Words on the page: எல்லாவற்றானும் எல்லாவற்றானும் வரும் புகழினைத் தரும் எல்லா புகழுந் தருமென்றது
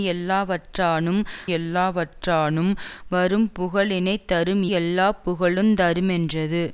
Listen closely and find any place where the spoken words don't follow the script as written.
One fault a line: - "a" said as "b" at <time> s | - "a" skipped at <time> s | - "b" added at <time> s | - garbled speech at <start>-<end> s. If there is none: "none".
none